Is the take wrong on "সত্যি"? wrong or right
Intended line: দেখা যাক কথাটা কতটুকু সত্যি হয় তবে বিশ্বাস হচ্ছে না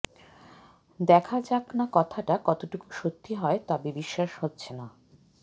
right